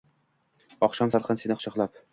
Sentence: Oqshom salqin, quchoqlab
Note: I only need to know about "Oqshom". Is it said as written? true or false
true